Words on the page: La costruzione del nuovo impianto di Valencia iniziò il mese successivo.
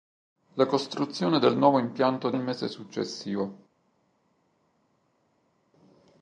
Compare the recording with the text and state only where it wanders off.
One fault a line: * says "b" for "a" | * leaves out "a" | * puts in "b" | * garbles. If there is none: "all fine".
* leaves out "di Valencia iniziò"